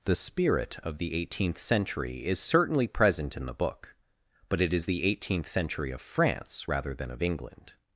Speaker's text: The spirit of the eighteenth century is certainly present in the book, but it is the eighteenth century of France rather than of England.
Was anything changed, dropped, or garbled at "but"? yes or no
no